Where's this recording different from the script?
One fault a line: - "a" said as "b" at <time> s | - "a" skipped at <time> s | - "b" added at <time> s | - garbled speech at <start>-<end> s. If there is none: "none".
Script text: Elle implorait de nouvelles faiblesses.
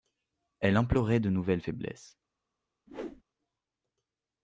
none